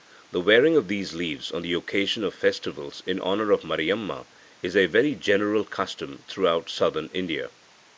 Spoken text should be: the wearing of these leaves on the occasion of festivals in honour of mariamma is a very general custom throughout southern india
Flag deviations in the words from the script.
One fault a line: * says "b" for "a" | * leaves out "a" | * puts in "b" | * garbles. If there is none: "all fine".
all fine